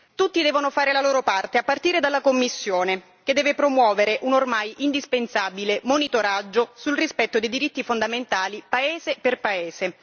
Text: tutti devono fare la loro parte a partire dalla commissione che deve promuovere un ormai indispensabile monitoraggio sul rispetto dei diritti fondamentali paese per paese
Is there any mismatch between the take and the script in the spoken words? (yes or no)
no